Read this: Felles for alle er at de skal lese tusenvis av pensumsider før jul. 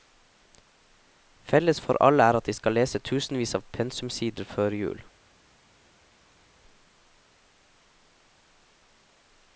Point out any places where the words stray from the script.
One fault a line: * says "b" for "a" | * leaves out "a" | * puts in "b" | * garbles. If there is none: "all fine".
all fine